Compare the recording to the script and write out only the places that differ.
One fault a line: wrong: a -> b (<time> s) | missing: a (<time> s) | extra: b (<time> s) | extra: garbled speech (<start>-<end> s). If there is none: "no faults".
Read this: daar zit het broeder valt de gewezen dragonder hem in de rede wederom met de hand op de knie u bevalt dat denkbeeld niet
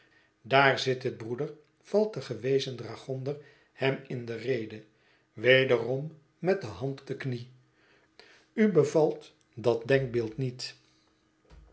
missing: op (7.0 s)